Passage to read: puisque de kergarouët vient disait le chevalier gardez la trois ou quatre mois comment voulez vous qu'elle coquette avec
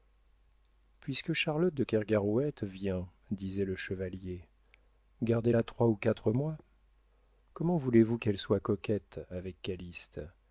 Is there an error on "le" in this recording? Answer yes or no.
no